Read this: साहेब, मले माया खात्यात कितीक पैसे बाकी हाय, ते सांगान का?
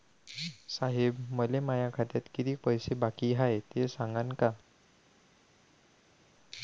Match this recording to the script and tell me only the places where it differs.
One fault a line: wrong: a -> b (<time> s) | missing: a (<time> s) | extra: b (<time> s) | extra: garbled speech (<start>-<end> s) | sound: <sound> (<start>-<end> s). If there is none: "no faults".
no faults